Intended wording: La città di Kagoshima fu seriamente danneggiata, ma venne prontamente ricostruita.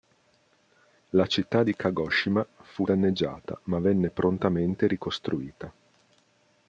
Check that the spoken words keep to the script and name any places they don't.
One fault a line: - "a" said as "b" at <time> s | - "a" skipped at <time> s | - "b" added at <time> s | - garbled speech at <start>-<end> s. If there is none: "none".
- "seriamente" skipped at 2.9 s